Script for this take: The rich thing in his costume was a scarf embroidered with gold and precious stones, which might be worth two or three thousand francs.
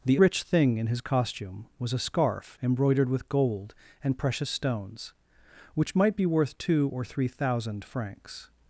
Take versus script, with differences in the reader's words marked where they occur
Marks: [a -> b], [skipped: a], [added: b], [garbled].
The rich thing in his costume was a scarf embroidered with gold and precious stones, which might be worth two or three thousand francs.